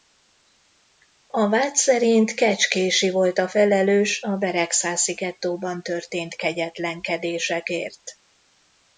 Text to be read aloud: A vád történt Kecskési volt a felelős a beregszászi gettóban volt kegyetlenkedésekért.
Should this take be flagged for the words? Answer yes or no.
yes